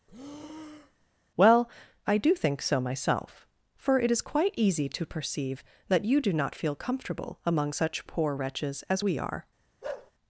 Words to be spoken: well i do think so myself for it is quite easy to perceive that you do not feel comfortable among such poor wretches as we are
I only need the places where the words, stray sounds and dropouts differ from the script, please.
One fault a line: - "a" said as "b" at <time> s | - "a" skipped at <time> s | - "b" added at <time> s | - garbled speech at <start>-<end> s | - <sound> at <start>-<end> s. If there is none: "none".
- breath at 0.1-1.1 s
- bark at 9.8-10.1 s